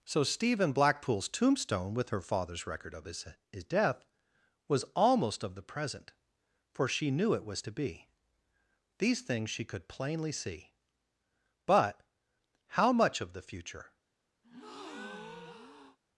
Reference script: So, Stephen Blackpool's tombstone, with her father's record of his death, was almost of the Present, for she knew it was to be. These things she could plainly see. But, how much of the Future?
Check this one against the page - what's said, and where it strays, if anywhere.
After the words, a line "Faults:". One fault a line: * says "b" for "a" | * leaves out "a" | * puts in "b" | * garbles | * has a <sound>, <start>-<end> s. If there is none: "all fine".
So, Stephen Blackpool's tombstone, with her father's record of his his death, was almost of the Present, for she knew it was to be. These things she could plainly see. But, how much of the Future?
Faults:
* puts in "his"
* has a breath, 14.4-16.0 s